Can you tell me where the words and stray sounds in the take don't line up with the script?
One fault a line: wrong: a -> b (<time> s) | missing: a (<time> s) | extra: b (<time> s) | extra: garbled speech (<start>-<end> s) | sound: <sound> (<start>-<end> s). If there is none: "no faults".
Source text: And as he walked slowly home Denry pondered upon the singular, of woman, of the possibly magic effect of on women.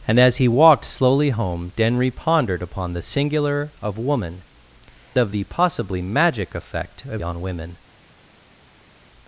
no faults